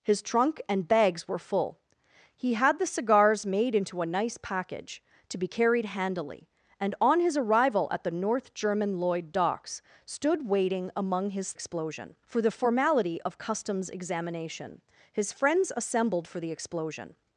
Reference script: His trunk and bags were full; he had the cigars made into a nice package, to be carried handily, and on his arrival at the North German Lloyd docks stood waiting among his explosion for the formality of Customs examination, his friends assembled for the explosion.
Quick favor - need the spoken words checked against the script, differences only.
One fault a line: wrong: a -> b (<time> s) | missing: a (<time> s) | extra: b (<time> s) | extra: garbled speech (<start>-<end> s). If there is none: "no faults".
no faults